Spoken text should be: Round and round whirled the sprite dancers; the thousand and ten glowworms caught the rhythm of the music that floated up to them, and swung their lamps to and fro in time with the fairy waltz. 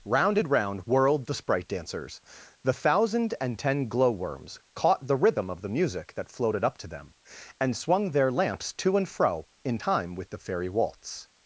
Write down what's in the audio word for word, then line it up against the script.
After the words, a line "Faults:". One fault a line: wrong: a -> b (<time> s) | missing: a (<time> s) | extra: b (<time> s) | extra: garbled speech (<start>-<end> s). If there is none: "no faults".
Round and round whirled the sprite dancers; the thousand and ten glowworms caught the rhythm of the music that floated up to them, and swung their lamps to and fro in time with the fairy waltz.
Faults:
no faults